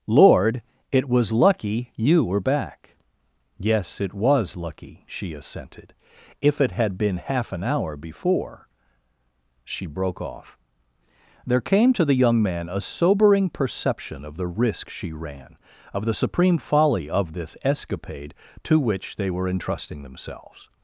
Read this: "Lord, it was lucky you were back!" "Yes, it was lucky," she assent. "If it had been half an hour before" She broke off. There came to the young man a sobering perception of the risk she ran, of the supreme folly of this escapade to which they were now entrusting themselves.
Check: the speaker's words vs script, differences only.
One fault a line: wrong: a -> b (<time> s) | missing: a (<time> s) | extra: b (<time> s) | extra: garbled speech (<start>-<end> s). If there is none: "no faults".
wrong: assent -> assented (5.3 s)
missing: now (19.5 s)